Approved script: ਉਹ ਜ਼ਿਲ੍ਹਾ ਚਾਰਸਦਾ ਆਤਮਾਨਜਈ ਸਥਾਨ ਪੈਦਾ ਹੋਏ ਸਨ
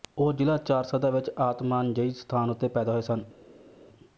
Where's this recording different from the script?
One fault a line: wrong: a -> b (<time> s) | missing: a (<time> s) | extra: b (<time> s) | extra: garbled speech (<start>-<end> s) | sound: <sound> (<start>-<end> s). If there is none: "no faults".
extra: ਵਿੱਚ (1.1 s)
extra: ਉੱਤੇ (2.5 s)